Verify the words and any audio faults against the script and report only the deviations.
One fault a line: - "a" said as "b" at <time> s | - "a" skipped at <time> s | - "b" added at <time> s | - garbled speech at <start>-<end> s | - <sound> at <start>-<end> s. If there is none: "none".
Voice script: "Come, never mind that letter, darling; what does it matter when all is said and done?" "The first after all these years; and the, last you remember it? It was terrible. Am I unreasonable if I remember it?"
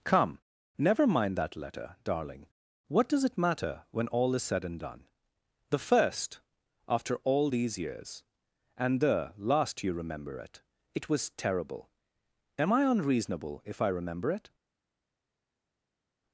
none